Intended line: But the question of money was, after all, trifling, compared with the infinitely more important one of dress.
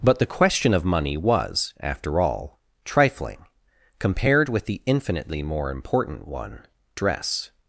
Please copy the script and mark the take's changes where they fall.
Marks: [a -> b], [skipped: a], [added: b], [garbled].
But the question of money was, after all, trifling, compared with the infinitely more important one [skipped: of] dress.